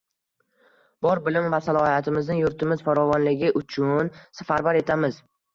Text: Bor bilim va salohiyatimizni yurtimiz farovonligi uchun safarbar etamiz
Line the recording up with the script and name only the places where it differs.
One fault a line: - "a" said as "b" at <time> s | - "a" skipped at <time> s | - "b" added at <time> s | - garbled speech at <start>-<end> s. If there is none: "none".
none